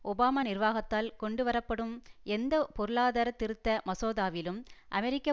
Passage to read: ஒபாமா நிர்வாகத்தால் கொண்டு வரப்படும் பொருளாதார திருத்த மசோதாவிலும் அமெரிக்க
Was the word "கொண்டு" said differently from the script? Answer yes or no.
no